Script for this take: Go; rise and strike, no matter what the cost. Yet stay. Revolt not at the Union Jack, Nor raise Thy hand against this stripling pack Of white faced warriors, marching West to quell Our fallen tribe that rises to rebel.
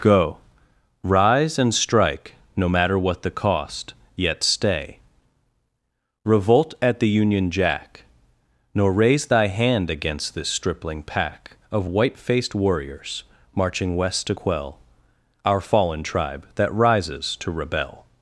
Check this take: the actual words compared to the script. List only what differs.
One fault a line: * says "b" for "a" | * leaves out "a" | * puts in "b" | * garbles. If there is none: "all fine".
* leaves out "not"